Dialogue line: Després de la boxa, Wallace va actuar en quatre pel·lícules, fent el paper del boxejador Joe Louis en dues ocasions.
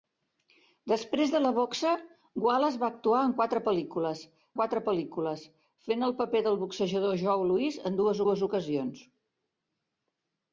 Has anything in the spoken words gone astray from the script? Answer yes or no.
yes